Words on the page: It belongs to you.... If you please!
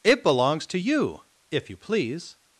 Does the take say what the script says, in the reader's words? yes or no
yes